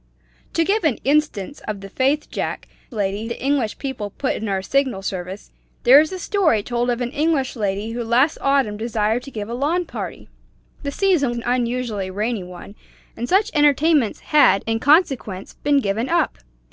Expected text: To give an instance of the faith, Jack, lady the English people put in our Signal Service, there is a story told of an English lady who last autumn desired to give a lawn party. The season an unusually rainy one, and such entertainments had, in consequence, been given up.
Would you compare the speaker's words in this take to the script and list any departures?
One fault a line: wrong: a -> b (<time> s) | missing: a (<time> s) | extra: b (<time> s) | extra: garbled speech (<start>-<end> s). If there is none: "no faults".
no faults